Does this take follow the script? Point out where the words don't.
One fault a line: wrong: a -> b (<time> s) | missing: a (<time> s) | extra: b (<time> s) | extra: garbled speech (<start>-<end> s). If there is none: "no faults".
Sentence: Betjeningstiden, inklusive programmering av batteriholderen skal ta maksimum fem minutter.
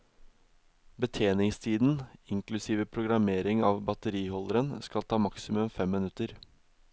no faults